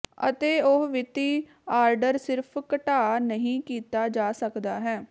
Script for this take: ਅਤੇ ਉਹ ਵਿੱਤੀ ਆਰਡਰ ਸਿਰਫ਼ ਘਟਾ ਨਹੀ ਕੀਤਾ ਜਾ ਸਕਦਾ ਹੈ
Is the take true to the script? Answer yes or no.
yes